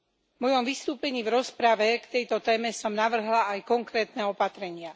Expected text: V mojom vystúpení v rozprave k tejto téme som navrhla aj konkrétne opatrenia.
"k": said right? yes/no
yes